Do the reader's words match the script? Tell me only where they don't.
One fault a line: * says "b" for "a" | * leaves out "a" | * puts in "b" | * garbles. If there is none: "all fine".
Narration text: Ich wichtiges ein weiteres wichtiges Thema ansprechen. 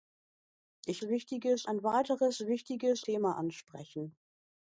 all fine